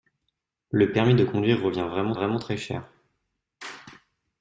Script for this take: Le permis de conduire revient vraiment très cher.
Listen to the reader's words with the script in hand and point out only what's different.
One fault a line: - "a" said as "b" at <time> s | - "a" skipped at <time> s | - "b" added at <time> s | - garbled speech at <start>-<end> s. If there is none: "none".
- "vraiment" added at 2.1 s